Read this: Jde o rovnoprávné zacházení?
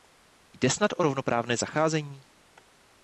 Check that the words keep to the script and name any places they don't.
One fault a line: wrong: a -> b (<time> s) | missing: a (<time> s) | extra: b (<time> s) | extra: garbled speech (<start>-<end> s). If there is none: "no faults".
extra: snad (0.7 s)